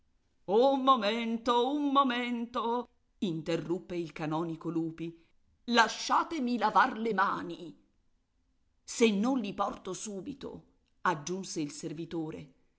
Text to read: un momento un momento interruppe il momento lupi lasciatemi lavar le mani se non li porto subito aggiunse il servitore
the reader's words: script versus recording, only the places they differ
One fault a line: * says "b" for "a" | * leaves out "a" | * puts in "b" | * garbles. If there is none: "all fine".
* says "canonico" for "momento"